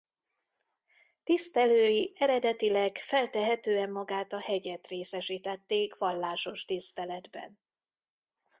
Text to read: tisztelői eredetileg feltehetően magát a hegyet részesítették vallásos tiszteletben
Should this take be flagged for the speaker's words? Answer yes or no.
no